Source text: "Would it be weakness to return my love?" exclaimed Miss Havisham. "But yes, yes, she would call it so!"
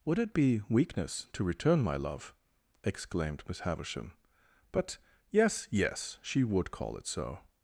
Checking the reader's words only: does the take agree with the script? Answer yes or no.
yes